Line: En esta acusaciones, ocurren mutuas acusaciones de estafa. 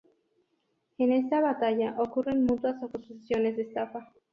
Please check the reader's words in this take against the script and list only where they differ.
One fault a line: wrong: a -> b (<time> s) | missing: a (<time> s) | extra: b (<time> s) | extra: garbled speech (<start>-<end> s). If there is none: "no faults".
wrong: acusaciones -> batalla (1.4 s)